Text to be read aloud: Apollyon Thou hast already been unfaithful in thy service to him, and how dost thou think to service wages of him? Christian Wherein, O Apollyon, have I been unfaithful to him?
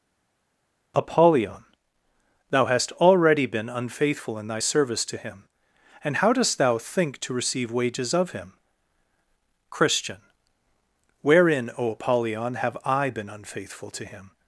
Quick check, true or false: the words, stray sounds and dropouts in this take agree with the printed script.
false